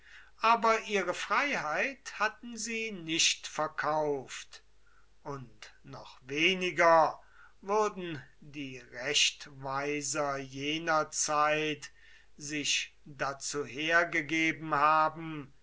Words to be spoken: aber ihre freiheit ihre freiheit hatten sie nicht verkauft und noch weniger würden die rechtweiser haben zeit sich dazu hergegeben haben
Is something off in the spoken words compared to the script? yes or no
yes